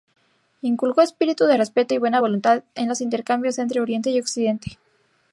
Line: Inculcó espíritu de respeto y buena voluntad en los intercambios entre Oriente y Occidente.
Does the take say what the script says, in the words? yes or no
yes